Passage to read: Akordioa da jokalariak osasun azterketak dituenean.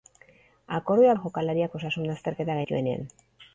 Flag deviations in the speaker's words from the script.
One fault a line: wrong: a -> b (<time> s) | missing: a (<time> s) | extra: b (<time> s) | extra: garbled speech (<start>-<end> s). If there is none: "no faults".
no faults